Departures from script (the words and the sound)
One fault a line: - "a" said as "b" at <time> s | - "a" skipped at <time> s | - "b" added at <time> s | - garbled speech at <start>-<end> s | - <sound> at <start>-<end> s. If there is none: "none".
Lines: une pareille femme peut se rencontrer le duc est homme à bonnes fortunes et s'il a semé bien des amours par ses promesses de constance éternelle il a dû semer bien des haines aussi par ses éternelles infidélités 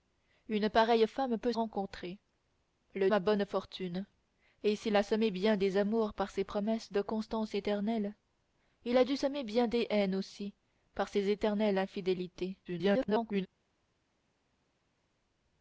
- "se" skipped at 1.5 s
- "duc est homme" skipped at 3.1 s
- garbled speech at 12.6-13.5 s